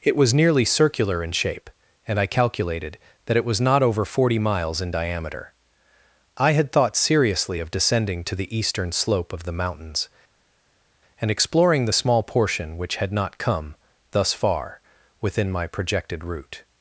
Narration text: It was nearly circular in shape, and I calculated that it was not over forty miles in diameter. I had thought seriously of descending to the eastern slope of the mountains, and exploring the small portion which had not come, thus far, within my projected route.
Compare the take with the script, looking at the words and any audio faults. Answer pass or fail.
pass